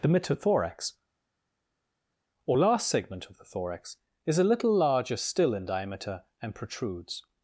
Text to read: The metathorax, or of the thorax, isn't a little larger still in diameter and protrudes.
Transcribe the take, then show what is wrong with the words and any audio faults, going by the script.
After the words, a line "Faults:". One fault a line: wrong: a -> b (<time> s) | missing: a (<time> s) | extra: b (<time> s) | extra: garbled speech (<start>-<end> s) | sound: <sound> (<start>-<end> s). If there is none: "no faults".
The metathorax, or last segment of the thorax, is a little larger still in diameter and protrudes.
Faults:
extra: last segment (2.5 s)
wrong: isn't -> is (4.3 s)